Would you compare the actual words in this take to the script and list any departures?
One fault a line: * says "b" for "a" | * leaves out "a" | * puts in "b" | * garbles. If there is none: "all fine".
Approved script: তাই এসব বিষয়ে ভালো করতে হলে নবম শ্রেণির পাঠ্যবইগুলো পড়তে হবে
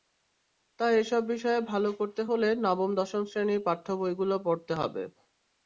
* puts in "দশম"